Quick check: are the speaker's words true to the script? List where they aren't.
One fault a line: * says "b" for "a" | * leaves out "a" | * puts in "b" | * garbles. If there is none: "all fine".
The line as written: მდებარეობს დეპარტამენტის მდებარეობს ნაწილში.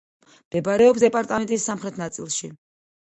* says "სამხრეთ" for "მდებარეობს"